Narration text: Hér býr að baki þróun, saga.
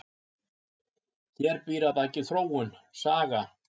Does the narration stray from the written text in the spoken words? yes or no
no